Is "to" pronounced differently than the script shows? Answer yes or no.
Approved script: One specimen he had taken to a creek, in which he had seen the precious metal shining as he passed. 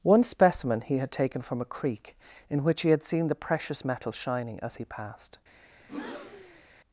yes